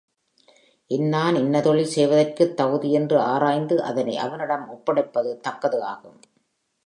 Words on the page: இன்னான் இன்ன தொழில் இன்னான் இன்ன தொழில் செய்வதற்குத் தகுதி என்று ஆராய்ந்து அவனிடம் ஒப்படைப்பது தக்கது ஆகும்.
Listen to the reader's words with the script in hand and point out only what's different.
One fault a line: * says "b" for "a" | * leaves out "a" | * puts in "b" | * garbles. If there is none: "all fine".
* leaves out "இன்னான் இன்ன தொழில்"
* puts in "அதனை"